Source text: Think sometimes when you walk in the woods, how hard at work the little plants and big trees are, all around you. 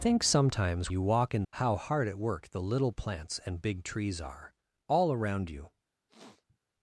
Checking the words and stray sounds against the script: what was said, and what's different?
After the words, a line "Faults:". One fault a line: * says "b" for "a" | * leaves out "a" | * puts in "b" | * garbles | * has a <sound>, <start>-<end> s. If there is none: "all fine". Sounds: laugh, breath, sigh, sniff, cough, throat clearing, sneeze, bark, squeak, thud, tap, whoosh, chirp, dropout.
Think sometimes you walk in how hard at work the little plants and big trees are, all around you.
Faults:
* leaves out "when"
* leaves out "the woods"
* has a sniff, 6.1-6.6 s